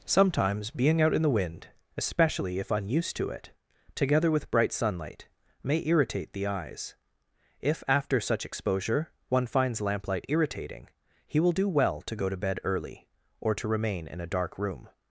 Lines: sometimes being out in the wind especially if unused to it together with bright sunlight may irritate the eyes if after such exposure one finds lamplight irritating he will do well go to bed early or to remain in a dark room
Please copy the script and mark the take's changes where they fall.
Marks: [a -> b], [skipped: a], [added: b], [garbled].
sometimes being out in the wind especially if unused to it together with bright sunlight may irritate the eyes if after such exposure one finds lamplight irritating he will do well [added: to] go to bed early or to remain in a dark room